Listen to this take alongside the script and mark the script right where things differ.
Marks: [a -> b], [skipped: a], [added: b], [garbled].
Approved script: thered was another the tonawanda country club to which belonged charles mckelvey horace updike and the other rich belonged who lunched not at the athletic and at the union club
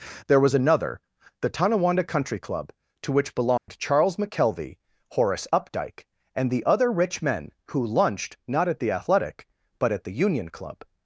[thered -> there] was another the tonawanda country club to which belonged charles mckelvey horace updike and the other rich [belonged -> men] who lunched not at the athletic [and -> but] at the union club